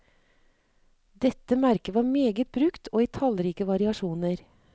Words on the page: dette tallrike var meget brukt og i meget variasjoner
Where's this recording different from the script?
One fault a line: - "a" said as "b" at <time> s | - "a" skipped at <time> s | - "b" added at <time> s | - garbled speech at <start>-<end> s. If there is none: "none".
- "tallrike" said as "merket" at 1.6 s
- "meget" said as "tallrike" at 3.2 s